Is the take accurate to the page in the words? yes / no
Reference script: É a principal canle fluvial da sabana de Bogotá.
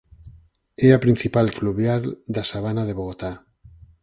no